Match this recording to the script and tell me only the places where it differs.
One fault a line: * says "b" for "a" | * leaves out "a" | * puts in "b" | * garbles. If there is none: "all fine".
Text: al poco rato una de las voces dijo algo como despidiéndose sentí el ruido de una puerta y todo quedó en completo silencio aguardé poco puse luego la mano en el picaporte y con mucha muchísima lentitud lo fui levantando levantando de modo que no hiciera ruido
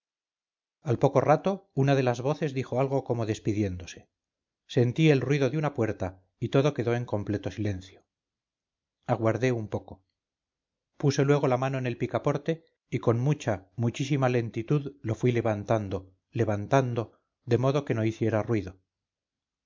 * puts in "un"